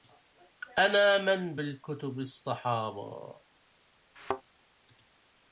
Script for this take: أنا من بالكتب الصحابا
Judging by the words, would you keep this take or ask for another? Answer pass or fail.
pass